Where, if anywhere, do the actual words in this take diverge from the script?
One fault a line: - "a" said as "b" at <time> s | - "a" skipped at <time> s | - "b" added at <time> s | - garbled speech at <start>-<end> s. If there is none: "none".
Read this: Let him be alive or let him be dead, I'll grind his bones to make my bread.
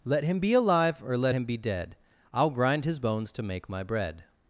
none